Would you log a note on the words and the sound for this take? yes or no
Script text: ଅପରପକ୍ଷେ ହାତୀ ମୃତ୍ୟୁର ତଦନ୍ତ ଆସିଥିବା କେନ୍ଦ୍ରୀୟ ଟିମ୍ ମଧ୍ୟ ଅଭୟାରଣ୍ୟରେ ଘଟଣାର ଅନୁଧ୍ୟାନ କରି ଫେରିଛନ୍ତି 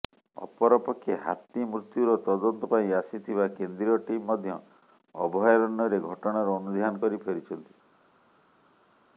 yes